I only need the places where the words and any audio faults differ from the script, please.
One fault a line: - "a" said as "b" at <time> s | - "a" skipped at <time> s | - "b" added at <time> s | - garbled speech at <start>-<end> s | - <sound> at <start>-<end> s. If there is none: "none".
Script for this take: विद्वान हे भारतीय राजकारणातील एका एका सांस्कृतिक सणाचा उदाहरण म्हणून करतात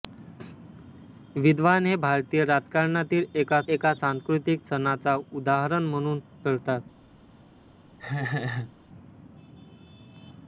- laugh at 8.0-8.7 s